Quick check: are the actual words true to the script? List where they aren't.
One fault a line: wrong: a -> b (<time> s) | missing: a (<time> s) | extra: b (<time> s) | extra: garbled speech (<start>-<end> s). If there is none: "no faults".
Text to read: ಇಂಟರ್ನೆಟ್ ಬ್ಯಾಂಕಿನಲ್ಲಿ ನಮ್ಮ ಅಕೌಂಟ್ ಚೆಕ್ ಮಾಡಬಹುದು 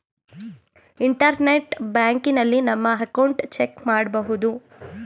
no faults